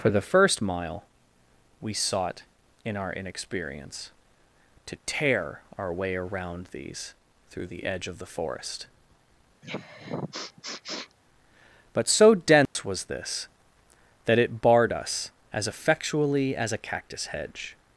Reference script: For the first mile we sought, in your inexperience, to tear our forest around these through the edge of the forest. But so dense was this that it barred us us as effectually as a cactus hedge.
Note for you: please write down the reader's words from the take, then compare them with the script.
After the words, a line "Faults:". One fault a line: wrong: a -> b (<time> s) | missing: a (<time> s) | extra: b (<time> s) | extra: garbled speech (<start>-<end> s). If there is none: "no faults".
For the first mile we sought, in our inexperience, to tear our way around these through the edge of the forest. But so dense was this that it barred us as effectually as a cactus hedge.
Faults:
wrong: your -> our (3.0 s)
wrong: forest -> way (5.9 s)
missing: us (15.3 s)